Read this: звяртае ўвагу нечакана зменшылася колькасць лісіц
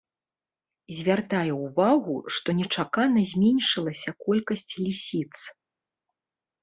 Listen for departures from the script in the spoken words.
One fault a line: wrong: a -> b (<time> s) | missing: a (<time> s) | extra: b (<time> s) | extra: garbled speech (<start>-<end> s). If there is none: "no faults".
extra: што (2.4 s)